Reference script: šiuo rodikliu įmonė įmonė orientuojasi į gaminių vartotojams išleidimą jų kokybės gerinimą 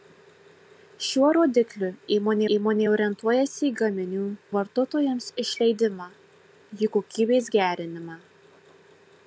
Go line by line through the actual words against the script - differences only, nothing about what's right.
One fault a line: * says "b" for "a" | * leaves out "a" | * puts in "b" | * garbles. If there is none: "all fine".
all fine